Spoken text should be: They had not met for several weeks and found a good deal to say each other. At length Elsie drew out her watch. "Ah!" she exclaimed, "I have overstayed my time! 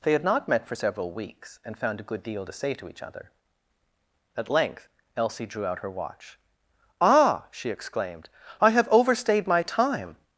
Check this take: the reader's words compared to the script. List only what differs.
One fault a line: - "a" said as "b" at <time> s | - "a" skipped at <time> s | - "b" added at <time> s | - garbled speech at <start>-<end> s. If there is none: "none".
- "to" added at 2.7 s